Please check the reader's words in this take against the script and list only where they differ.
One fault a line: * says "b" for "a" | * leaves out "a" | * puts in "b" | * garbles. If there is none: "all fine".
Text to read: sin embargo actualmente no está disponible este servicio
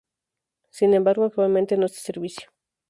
* leaves out "está disponible"